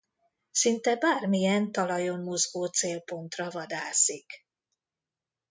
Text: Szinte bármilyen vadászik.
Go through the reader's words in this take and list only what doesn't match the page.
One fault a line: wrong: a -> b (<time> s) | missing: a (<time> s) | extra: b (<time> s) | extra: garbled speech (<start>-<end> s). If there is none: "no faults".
extra: talajon mozgó célpontra (1.7 s)